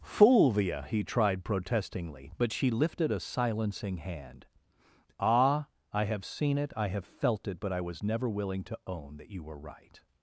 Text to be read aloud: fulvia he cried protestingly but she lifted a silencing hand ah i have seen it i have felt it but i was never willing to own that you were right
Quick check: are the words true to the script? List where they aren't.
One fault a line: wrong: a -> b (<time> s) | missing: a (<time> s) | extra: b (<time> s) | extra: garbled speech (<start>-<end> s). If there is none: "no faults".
wrong: cried -> tried (1.0 s)